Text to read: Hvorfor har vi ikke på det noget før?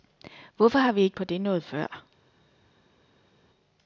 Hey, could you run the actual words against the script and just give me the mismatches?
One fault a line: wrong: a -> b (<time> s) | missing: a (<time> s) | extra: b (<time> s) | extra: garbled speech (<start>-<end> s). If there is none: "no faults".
no faults